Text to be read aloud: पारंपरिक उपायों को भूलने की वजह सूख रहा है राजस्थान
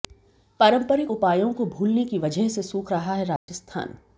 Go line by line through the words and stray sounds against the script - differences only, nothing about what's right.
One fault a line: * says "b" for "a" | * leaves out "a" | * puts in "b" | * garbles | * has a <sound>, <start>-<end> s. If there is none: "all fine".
* puts in "से"
* has a dropout, 3.4-3.5 s